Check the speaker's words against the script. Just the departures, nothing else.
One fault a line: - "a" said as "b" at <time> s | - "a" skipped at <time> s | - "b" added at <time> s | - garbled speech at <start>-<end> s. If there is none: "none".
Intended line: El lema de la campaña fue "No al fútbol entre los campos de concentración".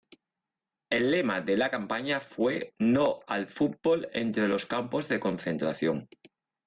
none